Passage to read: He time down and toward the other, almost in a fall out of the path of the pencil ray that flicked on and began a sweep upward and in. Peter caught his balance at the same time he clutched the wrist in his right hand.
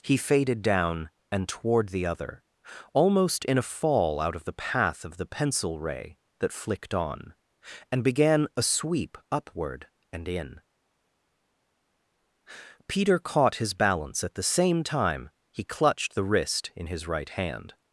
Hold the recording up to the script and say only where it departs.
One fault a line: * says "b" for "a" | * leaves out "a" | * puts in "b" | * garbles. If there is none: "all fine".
* says "faded" for "time"